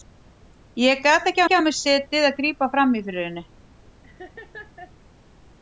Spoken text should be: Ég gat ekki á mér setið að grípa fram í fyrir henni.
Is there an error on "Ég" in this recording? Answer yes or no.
no